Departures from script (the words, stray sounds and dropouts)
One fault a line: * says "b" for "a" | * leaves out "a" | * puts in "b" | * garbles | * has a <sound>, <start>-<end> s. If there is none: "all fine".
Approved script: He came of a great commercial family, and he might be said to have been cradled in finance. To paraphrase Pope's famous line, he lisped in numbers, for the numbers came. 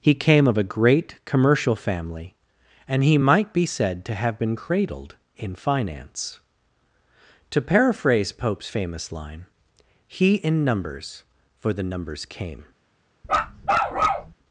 * leaves out "lisped"
* has a bark, 13.2-14.3 s